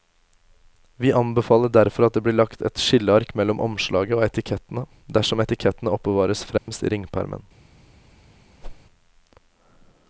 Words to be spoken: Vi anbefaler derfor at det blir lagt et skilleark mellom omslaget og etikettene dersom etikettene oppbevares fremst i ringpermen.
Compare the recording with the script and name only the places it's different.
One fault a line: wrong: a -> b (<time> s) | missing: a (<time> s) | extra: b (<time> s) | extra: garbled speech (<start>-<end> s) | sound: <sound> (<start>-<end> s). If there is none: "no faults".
sound: dropout (6.6-6.7 s)
sound: whoosh (8.6-8.8 s)